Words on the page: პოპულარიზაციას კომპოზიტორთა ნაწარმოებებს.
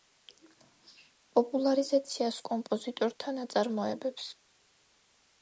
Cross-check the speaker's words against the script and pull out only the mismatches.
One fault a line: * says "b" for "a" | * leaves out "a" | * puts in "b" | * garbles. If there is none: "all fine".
all fine